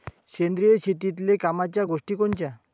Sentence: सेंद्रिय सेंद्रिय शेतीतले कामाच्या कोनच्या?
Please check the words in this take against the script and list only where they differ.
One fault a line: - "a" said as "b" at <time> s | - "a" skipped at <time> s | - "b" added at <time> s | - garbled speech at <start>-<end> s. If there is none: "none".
- "सेंद्रिय" skipped at 0.8 s
- "गोष्टी" added at 1.8 s